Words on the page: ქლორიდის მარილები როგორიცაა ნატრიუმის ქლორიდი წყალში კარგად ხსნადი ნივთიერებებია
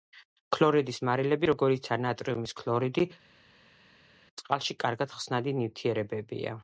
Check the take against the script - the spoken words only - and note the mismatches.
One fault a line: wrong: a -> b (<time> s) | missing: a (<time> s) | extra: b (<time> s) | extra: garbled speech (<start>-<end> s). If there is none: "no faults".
no faults